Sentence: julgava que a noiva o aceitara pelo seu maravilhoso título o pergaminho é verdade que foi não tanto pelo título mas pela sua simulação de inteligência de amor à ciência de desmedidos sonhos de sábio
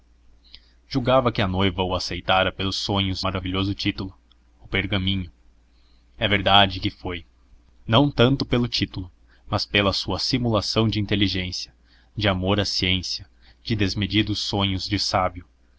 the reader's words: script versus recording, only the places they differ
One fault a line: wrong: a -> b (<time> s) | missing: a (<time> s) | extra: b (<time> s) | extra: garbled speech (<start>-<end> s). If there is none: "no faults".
wrong: seu -> sonhos (2.7 s)